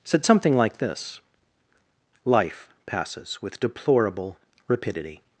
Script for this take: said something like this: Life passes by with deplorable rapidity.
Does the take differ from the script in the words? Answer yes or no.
yes